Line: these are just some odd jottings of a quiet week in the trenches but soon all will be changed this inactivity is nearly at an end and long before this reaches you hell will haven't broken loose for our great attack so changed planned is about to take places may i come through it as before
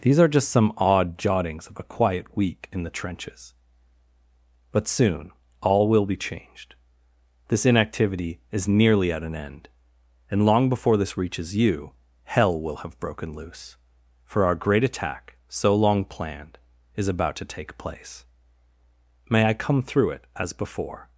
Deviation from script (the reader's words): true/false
true